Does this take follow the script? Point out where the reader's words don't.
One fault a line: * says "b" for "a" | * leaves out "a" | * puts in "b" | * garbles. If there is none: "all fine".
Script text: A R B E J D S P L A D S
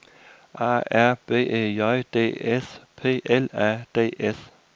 all fine